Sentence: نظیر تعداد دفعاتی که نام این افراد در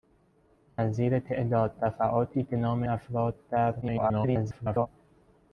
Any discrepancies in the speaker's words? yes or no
yes